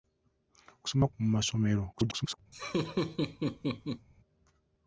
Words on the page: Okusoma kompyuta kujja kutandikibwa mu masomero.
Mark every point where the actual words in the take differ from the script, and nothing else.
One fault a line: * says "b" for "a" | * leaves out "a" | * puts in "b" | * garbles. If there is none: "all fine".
* leaves out "kompyuta kujja kutandikibwa"
* garbles